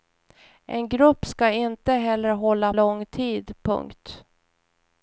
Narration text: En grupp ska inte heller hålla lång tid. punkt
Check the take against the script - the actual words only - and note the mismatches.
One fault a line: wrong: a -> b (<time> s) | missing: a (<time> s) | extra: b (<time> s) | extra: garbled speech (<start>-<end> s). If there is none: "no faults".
no faults